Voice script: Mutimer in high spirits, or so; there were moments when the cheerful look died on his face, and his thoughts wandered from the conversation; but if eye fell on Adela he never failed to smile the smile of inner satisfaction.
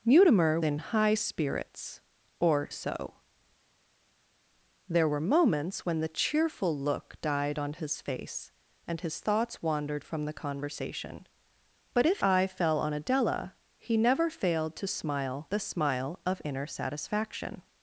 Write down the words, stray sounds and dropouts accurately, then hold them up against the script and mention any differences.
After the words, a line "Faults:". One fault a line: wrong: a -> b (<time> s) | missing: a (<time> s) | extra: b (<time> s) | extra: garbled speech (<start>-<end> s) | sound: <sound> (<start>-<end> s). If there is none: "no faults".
Mutimer in high spirits, or so; there were moments when the cheerful look died on his face, and his thoughts wandered from the conversation; but if eye fell on Adela he never failed to smile the smile of inner satisfaction.
Faults:
no faults